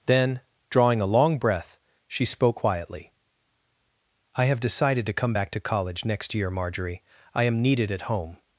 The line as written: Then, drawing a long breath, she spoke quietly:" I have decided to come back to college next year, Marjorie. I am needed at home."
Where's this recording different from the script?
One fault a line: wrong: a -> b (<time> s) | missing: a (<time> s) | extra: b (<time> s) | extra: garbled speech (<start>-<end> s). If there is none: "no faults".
no faults